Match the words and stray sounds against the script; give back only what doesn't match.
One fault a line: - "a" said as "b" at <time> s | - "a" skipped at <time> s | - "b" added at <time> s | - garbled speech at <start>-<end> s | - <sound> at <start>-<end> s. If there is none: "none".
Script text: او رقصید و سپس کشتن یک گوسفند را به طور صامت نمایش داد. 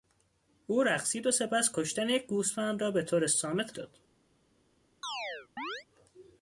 - "نمایش" skipped at 3.8 s
- chirp at 5.0-5.8 s